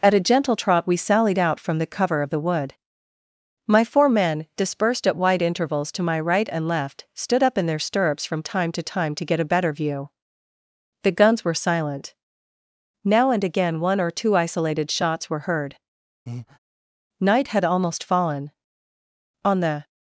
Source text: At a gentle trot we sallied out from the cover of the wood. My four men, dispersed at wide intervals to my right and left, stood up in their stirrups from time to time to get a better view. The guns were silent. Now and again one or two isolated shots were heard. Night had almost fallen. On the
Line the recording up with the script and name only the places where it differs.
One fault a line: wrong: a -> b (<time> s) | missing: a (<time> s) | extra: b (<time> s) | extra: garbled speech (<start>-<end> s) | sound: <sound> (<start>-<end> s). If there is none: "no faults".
sound: breath (16.3-16.6 s)